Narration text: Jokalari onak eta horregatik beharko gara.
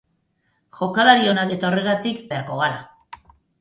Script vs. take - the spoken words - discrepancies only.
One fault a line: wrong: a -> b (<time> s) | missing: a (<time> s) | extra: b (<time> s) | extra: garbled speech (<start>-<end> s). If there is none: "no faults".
no faults